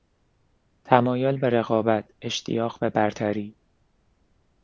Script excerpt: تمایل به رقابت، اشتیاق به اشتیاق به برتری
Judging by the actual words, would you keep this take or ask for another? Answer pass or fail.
fail